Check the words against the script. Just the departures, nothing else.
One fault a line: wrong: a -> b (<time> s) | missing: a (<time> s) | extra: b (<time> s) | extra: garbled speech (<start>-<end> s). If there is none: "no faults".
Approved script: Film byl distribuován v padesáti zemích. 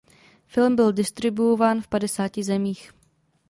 no faults